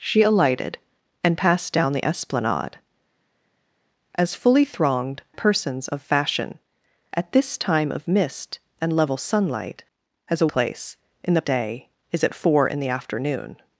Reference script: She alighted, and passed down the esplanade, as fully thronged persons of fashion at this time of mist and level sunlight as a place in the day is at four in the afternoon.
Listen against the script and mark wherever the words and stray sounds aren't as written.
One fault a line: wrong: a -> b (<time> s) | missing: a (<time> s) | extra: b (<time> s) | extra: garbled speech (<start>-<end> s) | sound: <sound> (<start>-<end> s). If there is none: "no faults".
no faults